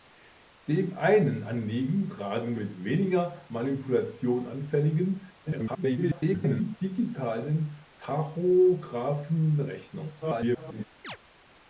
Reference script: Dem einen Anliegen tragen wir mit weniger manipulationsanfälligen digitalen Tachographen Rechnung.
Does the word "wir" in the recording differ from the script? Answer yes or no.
yes